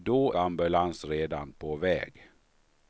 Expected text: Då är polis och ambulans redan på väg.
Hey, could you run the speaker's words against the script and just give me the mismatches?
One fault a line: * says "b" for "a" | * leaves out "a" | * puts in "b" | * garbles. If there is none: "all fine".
* leaves out "är polis och"